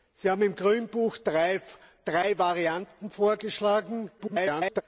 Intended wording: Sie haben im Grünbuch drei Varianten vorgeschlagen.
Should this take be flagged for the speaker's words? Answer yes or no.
yes